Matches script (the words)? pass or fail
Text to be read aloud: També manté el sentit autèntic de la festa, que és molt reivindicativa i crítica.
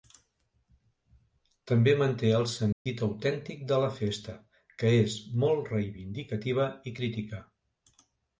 pass